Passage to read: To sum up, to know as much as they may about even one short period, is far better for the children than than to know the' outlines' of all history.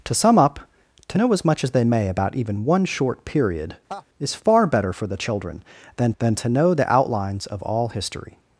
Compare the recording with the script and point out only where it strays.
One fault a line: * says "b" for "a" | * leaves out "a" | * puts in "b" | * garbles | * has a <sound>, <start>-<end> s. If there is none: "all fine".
* has a laugh, 3.9-4.1 s